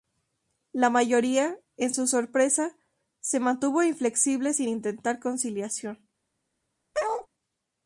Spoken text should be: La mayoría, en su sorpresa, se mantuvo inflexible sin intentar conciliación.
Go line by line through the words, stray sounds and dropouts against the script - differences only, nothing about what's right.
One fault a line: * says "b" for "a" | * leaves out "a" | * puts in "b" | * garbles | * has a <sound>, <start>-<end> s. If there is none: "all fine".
* has a bark, 6.9-7.3 s